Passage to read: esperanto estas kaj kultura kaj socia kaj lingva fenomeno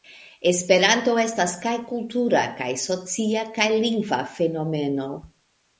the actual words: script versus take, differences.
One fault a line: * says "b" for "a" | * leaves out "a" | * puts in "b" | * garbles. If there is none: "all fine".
all fine